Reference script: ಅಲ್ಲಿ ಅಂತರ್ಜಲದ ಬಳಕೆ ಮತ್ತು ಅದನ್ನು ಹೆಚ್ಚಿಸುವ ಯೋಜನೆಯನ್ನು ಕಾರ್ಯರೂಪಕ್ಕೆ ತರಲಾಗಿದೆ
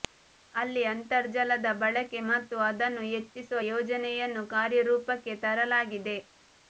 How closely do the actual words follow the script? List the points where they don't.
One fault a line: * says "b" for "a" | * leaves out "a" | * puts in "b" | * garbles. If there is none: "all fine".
all fine